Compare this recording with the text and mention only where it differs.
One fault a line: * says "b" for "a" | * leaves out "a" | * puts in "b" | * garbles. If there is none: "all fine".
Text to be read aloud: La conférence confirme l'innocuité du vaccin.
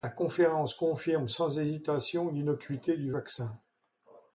* puts in "sans hésitation"